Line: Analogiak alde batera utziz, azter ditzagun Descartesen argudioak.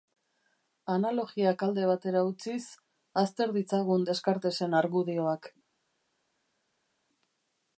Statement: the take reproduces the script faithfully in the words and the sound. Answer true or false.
true